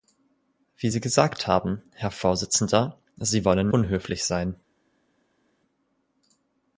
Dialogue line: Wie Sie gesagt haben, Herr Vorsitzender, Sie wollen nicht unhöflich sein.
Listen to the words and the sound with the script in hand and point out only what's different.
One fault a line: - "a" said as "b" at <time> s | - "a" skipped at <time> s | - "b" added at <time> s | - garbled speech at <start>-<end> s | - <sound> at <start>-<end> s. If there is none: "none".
- "nicht" skipped at 3.7 s